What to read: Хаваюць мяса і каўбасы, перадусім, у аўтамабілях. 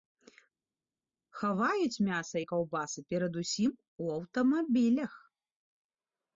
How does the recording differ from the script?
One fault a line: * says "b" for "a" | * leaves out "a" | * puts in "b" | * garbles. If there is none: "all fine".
all fine